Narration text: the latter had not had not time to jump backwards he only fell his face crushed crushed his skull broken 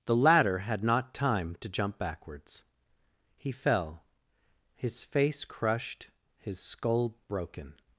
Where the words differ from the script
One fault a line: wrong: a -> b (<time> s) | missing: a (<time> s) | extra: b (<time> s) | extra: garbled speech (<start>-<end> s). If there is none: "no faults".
missing: had not (1.1 s)
missing: only (3.5 s)
missing: crushed (6.1 s)